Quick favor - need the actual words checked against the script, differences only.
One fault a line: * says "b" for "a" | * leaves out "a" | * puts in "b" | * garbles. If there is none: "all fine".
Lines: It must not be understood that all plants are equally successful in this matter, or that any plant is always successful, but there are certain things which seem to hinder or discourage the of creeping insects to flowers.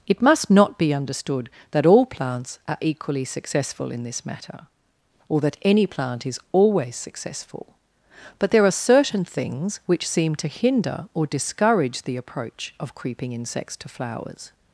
* puts in "approach"